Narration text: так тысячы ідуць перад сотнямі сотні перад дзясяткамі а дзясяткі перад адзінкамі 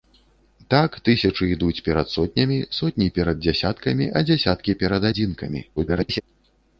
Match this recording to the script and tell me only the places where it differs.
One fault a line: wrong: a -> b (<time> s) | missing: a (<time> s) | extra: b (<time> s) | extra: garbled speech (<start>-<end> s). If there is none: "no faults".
extra: garbled speech (5.8-6.2 s)